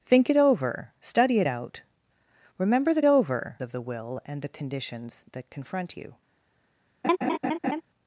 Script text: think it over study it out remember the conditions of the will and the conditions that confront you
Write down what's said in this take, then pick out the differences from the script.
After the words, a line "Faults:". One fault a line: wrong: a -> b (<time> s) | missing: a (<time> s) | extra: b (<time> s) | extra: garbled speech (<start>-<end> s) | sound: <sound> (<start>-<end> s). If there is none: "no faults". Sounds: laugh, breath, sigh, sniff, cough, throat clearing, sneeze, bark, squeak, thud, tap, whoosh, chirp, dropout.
think it over study it out remember the over of the will and the conditions that confront you
Faults:
wrong: conditions -> over (3.0 s)
sound: laugh (7.0-7.8 s)